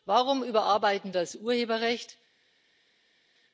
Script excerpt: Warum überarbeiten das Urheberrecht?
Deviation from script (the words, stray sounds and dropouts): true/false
false